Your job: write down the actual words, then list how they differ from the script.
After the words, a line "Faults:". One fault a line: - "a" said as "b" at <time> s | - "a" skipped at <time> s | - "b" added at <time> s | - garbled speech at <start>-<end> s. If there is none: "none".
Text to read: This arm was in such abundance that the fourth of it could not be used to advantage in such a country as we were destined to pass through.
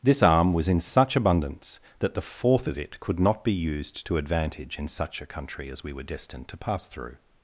This arm was in such abundance that the fourth of it could not be used to advantage in such a country as we were destined to pass through.
Faults:
none